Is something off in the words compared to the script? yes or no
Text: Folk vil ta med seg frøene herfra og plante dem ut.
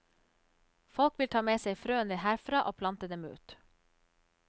no